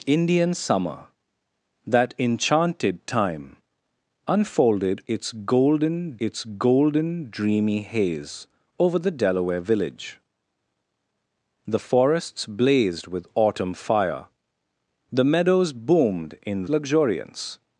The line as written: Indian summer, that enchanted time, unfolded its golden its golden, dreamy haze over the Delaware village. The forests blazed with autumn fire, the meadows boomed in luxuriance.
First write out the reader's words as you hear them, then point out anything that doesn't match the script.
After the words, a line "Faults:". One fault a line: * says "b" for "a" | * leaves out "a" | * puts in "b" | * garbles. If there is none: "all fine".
Indian summer, that enchanted time, unfolded its golden its golden, dreamy haze over the Delaware village. The forests blazed with autumn fire, the meadows boomed in luxuriance.
Faults:
all fine